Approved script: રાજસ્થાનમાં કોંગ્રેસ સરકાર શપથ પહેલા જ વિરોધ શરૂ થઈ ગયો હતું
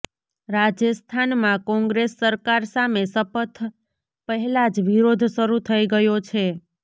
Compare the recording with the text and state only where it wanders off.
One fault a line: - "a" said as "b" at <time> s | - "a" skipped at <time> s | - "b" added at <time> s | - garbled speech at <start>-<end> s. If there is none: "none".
- "સામે" added at 2.7 s
- "હતું" said as "છે" at 6.2 s